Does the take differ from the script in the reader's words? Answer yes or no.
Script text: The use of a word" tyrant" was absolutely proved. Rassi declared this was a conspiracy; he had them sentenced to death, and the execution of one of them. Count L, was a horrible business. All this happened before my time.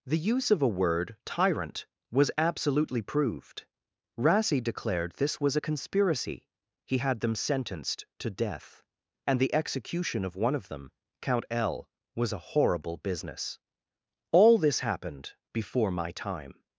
no